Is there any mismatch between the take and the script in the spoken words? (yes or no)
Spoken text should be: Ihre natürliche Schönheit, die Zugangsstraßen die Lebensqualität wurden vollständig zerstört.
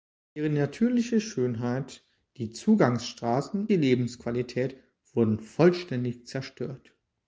no